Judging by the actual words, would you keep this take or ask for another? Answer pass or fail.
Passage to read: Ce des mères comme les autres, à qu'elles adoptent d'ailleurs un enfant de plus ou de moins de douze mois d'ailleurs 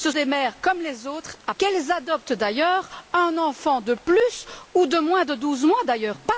pass